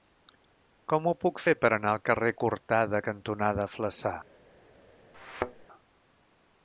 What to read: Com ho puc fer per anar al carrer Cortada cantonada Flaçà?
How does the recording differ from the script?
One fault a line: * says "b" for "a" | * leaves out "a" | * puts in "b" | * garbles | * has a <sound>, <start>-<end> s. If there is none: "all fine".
* has a thud, 5.1-5.7 s